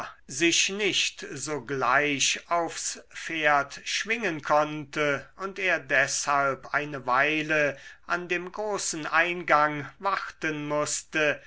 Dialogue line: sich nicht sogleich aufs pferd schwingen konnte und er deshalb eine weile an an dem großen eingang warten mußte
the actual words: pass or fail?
fail